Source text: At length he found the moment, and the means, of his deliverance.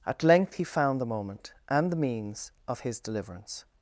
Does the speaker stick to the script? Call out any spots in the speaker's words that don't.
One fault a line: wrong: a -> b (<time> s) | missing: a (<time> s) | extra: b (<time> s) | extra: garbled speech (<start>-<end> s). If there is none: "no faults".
no faults